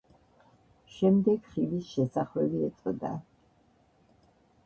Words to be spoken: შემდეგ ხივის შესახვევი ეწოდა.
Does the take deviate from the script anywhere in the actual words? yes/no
no